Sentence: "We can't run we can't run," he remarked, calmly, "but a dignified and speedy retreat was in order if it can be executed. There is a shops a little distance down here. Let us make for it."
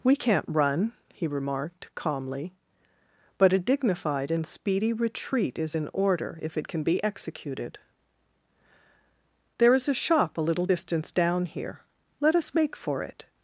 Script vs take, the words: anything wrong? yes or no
yes